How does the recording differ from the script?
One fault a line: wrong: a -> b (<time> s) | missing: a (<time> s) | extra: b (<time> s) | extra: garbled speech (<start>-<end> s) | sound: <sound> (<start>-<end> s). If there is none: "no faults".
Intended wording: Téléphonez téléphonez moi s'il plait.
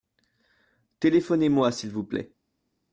missing: téléphonez (1.5 s)
extra: vous (1.9 s)